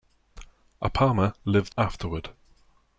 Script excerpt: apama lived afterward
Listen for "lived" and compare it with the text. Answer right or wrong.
right